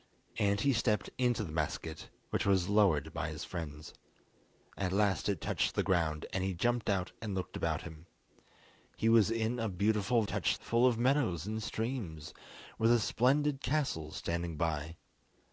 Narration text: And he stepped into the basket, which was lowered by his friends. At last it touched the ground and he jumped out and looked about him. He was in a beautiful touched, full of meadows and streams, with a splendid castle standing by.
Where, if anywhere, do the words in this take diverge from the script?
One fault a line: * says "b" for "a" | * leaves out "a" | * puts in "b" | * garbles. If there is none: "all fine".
all fine